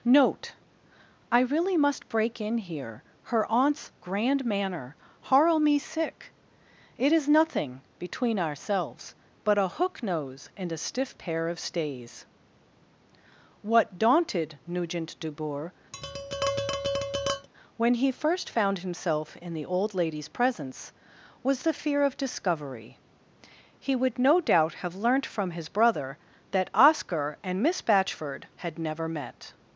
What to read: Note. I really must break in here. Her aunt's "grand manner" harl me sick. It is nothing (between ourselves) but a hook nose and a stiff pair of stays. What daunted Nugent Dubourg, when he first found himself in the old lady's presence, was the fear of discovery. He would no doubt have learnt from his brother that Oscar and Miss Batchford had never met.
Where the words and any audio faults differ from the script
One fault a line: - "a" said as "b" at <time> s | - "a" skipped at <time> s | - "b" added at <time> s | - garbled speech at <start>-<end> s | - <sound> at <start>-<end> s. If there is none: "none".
- tap at 15.9-17.5 s